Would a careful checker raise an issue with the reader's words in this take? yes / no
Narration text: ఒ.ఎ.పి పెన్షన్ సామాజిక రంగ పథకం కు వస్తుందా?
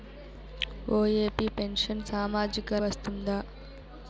yes